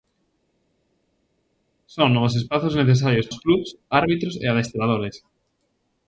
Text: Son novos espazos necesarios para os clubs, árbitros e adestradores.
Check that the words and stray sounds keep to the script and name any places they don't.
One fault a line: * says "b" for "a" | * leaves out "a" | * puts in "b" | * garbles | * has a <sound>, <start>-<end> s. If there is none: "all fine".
* leaves out "para"